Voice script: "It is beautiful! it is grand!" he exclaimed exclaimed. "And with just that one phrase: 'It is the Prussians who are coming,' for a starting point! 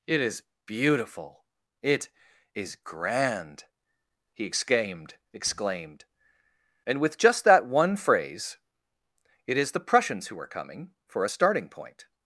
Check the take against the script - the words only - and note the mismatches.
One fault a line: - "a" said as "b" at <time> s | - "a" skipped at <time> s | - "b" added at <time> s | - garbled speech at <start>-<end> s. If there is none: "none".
none